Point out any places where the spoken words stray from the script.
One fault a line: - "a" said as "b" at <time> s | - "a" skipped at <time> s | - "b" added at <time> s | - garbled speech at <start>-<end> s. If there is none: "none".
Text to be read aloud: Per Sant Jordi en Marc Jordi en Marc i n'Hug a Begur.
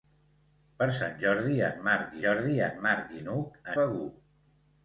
none